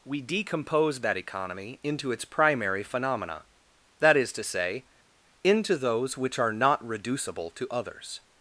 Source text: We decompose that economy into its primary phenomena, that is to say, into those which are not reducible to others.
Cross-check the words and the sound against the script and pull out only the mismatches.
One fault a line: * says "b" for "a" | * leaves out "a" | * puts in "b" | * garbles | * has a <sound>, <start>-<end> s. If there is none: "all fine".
all fine